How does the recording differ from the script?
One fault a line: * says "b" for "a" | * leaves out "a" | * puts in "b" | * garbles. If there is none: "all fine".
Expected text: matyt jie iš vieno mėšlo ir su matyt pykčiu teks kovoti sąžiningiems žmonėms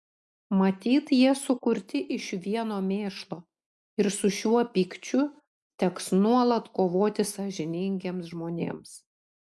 * puts in "sukurti"
* says "šiuo" for "matyt"
* puts in "nuolat"